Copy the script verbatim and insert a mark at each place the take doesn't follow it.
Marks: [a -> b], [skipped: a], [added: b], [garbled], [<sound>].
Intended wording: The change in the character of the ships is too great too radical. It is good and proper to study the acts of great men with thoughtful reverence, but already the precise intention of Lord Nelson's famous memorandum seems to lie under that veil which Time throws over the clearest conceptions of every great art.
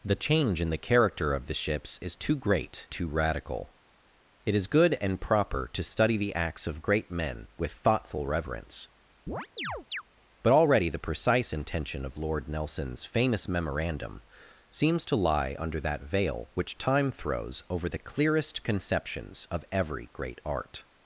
The change in the character of the ships is too great too radical. It is good and proper to study the acts of great men with thoughtful reverence, [chirp] but already the precise intention of Lord Nelson's famous memorandum seems to lie under that veil which Time throws over the clearest conceptions of every great art.